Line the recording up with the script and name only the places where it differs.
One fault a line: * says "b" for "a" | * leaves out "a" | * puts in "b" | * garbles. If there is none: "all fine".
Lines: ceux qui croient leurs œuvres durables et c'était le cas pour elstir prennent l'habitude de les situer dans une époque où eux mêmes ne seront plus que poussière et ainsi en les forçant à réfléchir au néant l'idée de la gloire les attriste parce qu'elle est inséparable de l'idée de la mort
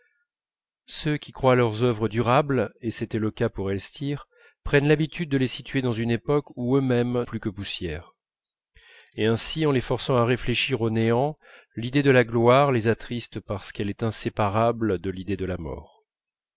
* leaves out "ne seront"